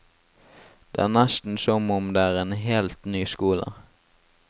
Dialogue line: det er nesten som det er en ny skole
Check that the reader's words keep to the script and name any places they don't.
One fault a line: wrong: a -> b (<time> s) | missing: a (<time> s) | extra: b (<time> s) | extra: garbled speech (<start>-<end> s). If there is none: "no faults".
extra: om (2.0 s)
extra: helt (2.6 s)